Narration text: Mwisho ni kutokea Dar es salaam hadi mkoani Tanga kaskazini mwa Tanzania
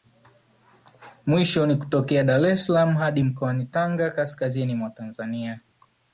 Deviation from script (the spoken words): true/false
false